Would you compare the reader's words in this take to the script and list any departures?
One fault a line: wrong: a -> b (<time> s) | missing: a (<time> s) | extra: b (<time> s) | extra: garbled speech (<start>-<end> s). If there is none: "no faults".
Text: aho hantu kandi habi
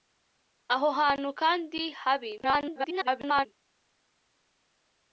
extra: garbled speech (2.4-3.5 s)